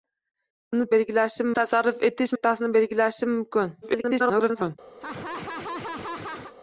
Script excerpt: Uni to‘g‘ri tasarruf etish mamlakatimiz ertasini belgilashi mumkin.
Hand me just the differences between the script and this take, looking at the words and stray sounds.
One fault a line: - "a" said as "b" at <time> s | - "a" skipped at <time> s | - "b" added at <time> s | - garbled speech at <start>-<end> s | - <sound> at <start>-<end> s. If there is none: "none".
- "to‘g‘ri" said as "belgilashi" at 1.0 s
- "mamlakatimiz" skipped at 2.3 s
- garbled speech at 3.8-4.8 s
- laugh at 5.0-6.5 s